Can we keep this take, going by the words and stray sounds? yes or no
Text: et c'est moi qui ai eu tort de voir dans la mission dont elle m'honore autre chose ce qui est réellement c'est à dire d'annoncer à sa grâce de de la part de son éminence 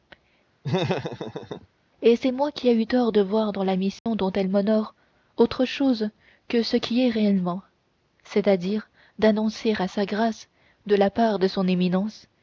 no